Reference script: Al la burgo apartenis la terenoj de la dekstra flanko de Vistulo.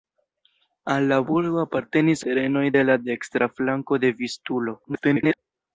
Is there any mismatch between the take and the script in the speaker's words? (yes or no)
yes